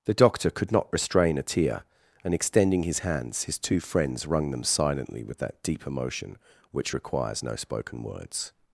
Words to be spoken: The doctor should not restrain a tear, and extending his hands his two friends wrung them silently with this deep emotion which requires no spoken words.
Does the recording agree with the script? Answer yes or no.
no